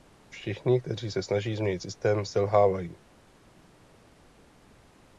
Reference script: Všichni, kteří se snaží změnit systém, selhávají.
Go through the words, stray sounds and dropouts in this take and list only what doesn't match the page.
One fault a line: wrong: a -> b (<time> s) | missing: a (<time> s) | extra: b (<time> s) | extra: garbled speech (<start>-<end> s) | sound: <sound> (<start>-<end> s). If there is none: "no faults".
no faults